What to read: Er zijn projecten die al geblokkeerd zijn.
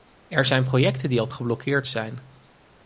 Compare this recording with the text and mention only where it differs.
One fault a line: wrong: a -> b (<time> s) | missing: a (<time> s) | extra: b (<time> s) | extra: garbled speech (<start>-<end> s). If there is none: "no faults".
no faults